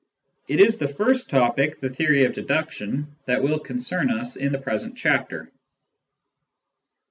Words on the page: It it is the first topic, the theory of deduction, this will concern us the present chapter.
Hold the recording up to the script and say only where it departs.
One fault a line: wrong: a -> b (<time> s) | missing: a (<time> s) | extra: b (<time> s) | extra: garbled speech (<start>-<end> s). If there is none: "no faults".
missing: it (0.6 s)
wrong: this -> that (3.2 s)
extra: in (4.3 s)